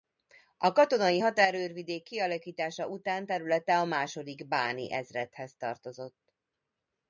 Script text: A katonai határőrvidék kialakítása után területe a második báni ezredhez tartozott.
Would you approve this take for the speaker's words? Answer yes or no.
yes